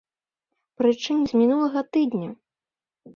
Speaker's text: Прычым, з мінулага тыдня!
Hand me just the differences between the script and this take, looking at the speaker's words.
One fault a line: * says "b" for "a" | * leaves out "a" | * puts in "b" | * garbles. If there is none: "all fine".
all fine